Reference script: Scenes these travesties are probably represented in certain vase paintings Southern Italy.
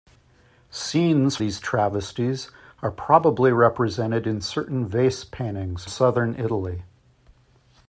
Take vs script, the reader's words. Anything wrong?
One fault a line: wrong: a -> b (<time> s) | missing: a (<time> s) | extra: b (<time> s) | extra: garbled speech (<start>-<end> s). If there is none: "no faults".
no faults